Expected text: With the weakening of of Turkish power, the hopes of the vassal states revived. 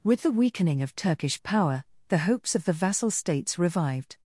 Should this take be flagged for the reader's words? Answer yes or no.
yes